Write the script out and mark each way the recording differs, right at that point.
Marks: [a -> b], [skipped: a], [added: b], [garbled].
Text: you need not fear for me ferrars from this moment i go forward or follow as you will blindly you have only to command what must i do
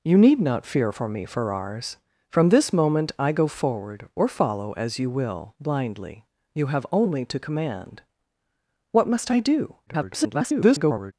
you need not fear for me ferrars from this moment i go forward or follow as you will blindly you have only to command what must i do [garbled]